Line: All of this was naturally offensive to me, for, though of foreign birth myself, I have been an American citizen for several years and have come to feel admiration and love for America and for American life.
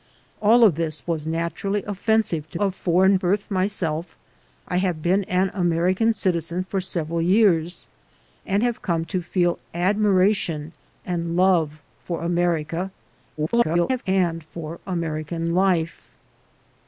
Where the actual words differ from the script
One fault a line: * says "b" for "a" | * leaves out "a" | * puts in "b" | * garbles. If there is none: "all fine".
* leaves out "me for though"
* garbles